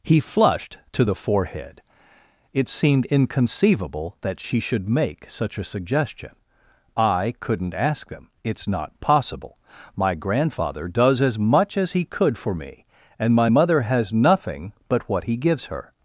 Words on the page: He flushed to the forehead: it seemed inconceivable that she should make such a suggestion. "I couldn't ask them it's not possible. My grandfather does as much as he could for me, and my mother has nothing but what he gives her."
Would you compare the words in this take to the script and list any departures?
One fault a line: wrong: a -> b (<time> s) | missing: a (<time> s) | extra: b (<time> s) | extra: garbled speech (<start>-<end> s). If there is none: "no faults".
no faults